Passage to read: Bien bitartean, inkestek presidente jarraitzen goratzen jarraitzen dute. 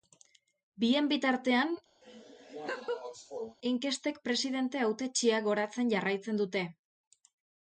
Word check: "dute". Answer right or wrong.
right